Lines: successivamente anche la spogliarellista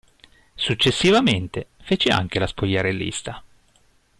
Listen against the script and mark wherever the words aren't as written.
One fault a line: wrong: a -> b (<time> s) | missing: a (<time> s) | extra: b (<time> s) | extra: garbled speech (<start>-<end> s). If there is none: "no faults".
extra: fece (1.8 s)